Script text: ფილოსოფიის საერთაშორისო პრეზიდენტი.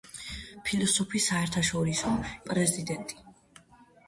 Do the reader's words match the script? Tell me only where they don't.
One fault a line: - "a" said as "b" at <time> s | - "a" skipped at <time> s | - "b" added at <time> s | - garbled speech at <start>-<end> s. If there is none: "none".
none